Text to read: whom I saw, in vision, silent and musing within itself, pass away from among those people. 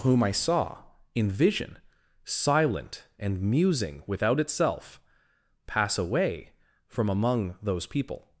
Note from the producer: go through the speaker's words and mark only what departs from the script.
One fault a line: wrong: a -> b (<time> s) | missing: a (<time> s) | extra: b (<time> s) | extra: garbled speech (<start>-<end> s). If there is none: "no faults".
wrong: within -> without (4.1 s)